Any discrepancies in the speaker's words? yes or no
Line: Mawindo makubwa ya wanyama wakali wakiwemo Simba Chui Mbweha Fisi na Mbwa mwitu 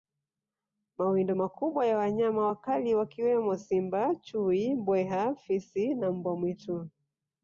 no